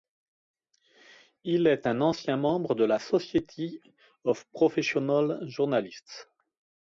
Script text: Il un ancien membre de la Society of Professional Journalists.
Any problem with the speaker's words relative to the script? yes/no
yes